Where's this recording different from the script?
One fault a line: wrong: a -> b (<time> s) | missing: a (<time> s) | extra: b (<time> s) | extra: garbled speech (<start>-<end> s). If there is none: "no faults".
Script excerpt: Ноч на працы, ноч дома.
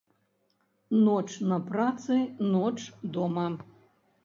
no faults